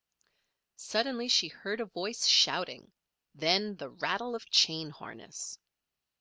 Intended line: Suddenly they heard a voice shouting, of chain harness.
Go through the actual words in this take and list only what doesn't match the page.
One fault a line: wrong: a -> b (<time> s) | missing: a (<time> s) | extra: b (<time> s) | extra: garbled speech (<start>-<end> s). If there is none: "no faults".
wrong: they -> she (1.3 s)
extra: then the rattle (3.4 s)